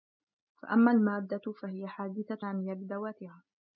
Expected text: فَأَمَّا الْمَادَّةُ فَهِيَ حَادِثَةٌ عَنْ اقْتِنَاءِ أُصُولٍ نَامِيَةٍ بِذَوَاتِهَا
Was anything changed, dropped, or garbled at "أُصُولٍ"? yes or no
yes